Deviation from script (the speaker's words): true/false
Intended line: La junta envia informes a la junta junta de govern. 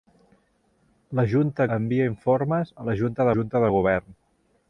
false